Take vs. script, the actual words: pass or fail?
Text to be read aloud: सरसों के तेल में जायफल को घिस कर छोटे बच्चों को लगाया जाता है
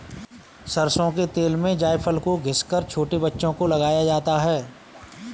pass